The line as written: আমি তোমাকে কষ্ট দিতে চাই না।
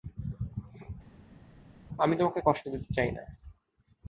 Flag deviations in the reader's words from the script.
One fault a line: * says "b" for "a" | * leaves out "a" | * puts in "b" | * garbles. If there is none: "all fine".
all fine